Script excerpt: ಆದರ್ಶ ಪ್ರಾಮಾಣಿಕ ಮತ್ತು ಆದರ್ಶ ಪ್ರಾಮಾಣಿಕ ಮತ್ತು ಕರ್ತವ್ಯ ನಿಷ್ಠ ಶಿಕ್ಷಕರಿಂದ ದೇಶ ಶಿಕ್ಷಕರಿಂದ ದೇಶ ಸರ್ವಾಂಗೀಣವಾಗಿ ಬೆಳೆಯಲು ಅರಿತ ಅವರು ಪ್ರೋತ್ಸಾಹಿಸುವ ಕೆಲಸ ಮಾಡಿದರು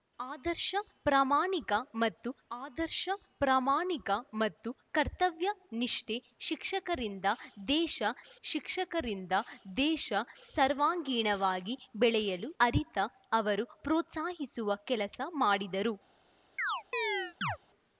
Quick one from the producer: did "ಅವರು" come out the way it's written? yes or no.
yes